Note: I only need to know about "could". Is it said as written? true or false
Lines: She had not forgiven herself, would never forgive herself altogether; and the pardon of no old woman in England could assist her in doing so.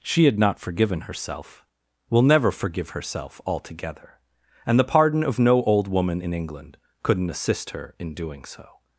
false